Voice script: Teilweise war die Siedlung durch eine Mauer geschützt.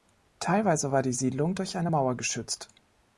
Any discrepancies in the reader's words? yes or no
no